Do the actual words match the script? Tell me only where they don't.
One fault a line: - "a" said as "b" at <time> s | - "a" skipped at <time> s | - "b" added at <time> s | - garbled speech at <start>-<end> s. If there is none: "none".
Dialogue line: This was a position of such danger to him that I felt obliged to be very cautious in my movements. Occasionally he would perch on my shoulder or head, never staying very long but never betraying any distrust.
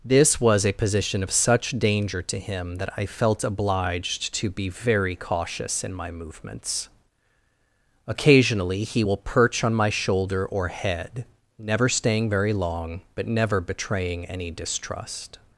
- "would" said as "will" at 9.0 s